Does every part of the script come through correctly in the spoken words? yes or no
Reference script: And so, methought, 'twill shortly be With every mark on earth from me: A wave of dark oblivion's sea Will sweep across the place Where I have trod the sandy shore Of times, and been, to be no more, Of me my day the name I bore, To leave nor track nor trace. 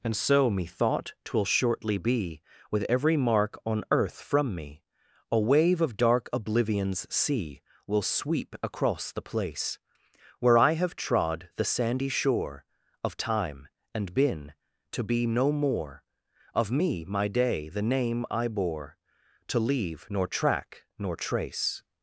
no